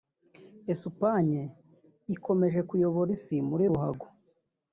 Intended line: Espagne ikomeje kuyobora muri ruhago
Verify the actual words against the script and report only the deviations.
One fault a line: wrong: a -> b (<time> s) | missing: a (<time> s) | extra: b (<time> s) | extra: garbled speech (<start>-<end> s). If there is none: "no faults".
extra: isi (3.2 s)